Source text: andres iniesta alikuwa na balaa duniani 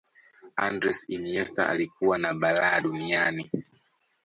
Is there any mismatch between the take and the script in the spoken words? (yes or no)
no